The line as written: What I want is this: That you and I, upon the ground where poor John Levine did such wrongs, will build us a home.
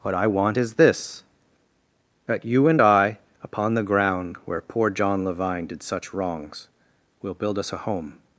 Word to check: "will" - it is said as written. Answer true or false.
true